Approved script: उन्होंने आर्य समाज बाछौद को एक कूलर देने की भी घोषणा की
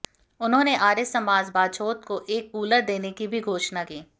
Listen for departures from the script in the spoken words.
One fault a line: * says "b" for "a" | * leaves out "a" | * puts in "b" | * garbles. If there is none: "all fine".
all fine